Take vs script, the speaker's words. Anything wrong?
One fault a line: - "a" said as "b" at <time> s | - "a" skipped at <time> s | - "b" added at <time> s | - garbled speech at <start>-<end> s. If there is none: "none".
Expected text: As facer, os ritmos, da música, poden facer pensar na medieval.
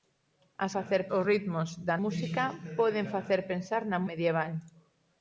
none